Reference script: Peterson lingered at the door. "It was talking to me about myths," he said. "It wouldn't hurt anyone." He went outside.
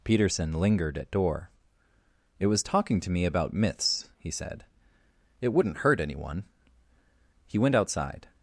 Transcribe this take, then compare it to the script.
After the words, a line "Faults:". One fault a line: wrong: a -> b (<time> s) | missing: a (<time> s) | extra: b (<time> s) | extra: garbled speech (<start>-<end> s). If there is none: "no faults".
Peterson lingered at door. "It was talking to me about myths," he said. "It wouldn't hurt anyone." He went outside.
Faults:
missing: the (1.1 s)